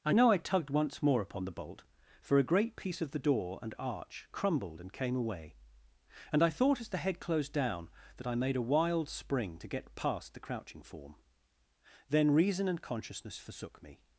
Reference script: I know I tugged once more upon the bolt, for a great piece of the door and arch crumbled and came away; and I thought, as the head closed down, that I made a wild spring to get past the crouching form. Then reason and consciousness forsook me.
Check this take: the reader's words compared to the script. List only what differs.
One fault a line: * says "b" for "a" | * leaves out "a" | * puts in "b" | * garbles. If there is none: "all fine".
all fine